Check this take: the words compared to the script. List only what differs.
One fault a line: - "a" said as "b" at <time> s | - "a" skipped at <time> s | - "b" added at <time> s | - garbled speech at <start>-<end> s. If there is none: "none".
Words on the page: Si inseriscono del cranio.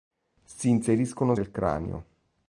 none